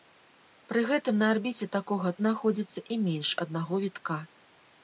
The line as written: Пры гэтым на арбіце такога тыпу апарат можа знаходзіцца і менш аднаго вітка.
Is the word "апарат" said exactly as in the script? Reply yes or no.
no